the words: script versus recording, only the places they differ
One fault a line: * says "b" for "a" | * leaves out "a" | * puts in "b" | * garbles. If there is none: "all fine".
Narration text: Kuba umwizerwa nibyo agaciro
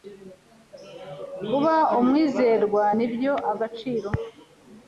all fine